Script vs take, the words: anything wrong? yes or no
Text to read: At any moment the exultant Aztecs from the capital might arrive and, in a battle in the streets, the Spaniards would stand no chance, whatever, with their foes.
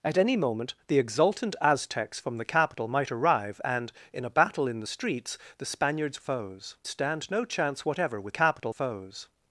yes